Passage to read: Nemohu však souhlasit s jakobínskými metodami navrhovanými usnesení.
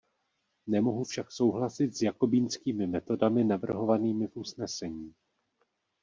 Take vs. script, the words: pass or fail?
fail